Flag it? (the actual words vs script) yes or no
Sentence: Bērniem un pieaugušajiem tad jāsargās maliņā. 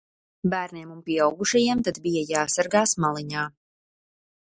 yes